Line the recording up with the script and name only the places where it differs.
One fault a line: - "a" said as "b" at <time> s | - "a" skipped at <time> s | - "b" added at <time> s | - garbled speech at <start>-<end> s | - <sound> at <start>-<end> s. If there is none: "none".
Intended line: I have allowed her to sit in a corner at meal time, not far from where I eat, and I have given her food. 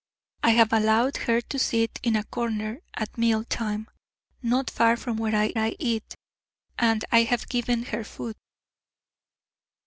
- "I" added at 5.6 s